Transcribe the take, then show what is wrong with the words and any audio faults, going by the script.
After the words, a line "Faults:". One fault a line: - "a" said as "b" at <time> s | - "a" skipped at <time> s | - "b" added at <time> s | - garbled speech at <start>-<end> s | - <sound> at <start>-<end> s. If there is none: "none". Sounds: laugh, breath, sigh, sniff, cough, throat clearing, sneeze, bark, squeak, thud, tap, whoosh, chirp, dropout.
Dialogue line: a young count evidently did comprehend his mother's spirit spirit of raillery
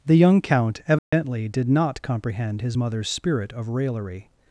the young count evidently did not comprehend his mother's spirit of raillery
Faults:
- "a" said as "the" at 0.0 s
- dropout at 1.0-1.1 s
- "not" added at 1.7 s
- "spirit" skipped at 3.5 s